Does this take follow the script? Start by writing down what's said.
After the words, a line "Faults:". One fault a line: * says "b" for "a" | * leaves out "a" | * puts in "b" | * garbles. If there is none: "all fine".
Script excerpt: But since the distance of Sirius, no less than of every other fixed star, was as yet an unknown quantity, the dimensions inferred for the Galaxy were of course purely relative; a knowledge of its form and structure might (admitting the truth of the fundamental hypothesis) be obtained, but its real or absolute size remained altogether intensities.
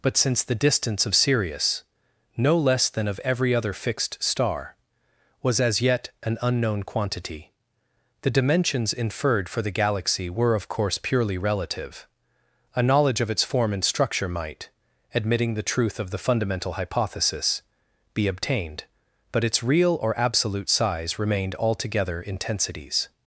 But since the distance of Sirius, no less than of every other fixed star, was as yet an unknown quantity, the dimensions inferred for the Galaxy were of course purely relative; a knowledge of its form and structure might (admitting the truth of the fundamental hypothesis) be obtained, but its real or absolute size remained altogether intensities.
Faults:
all fine